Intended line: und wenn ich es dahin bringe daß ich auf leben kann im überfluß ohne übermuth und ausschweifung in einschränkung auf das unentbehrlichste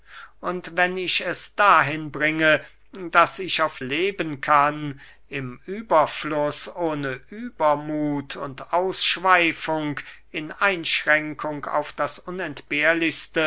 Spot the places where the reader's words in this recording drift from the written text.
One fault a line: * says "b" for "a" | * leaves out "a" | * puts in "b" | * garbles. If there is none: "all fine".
all fine